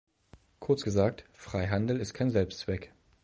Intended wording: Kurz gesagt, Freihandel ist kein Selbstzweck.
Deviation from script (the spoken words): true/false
false